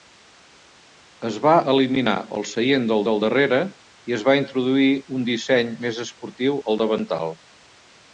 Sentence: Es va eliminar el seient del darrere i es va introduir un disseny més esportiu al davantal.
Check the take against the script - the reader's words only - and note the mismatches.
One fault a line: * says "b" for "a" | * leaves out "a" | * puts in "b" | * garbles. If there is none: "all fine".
* puts in "del"